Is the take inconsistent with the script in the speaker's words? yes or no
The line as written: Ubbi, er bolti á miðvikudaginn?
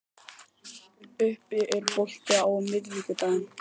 no